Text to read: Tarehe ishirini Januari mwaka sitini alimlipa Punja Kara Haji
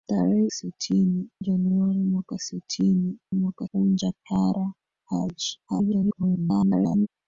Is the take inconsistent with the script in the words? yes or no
yes